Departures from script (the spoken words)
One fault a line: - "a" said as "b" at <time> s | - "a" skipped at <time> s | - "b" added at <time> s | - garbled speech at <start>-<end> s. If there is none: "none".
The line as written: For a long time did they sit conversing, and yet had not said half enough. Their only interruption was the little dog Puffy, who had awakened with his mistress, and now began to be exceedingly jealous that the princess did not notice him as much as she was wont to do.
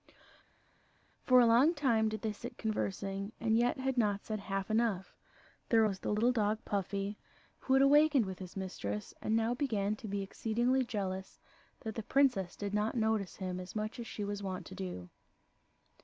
- "only interruption" skipped at 5.8 s